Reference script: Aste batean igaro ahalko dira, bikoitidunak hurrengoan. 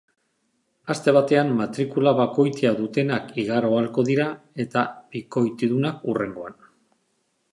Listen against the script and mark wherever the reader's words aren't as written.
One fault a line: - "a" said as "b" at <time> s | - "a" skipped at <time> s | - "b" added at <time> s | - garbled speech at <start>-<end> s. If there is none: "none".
- "matrikula bakoitia dutenak" added at 1.6 s
- "eta" added at 4.7 s